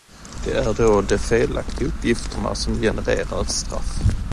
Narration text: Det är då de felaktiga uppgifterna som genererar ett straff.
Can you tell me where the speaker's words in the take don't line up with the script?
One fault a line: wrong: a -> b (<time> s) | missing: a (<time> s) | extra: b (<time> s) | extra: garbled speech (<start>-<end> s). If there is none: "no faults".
no faults